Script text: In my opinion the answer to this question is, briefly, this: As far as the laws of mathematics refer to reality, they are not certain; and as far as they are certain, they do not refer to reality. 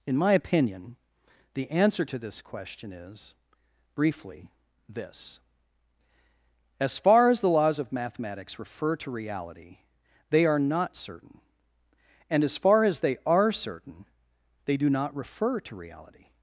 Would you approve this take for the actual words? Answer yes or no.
yes